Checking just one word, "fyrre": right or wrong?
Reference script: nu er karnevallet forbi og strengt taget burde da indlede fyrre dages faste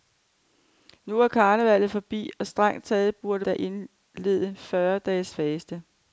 right